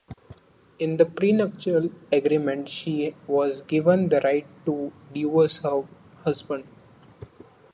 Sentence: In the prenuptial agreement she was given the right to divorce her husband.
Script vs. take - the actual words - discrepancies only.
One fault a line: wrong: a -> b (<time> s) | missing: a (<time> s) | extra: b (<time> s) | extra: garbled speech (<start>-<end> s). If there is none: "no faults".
no faults